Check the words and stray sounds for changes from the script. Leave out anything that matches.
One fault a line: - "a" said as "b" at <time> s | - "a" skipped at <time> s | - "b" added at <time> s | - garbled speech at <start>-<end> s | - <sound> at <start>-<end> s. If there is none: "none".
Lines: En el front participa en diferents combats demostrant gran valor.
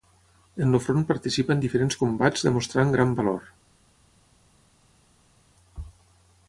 none